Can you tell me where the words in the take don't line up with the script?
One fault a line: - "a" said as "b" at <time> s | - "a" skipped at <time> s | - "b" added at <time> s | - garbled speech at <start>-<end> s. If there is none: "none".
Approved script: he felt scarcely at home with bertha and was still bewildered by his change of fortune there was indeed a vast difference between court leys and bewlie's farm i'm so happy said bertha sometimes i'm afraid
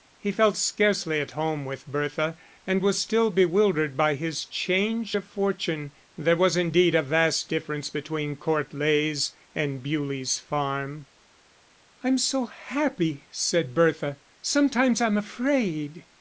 none